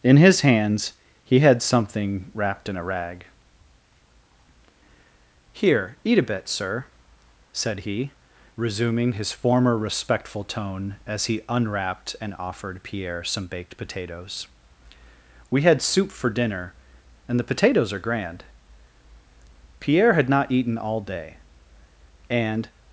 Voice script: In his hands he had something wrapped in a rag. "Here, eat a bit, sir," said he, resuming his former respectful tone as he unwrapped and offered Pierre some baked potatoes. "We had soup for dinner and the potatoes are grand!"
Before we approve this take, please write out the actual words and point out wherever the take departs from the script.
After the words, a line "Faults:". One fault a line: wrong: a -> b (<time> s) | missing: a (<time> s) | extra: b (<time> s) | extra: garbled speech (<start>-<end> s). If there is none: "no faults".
In his hands he had something wrapped in a rag. "Here, eat a bit, sir," said he, resuming his former respectful tone as he unwrapped and offered Pierre some baked potatoes. "We had soup for dinner and the potatoes are grand!" Pierre had not eaten all day and
Faults:
extra: Pierre had not eaten all day and (19.8 s)